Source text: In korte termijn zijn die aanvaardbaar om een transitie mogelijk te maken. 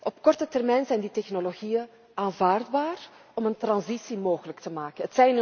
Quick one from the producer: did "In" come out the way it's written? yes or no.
no